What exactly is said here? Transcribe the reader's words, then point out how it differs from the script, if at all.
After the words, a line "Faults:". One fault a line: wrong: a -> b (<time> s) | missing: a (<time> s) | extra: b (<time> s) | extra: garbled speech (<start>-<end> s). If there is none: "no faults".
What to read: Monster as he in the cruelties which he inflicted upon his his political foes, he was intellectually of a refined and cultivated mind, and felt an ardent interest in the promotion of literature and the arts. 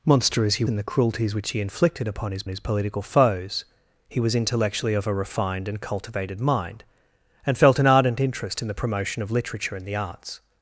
Monster as he in the cruelties which he inflicted upon his his political foes, he was intellectually of a refined and cultivated mind, and felt an ardent interest in the promotion of literature and the arts.
Faults:
no faults